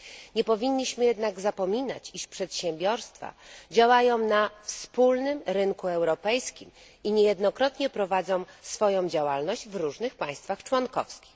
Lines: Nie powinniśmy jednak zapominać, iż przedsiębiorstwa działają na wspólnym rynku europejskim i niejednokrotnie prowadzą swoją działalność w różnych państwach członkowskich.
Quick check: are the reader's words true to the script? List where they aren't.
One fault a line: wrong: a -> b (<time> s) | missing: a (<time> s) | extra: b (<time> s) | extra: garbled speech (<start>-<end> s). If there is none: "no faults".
no faults